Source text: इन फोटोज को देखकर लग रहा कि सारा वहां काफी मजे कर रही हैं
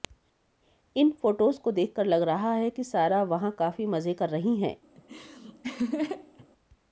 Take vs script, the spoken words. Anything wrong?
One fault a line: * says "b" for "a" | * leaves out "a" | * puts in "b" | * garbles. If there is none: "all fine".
* puts in "है"